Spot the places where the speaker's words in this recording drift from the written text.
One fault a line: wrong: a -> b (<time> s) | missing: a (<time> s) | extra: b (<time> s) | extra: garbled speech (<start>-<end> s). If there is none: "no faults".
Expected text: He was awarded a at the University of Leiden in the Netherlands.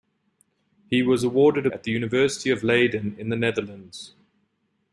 no faults